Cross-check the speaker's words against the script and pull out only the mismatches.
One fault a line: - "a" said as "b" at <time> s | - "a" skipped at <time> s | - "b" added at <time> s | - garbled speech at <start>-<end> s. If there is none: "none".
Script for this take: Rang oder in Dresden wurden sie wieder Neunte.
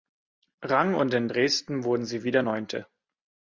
- "oder" said as "und" at 0.9 s